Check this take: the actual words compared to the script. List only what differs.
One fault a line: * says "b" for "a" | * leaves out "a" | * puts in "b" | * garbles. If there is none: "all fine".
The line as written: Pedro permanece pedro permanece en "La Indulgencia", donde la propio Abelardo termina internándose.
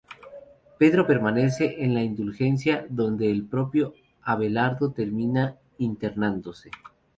* leaves out "pedro permanece"
* says "el" for "la"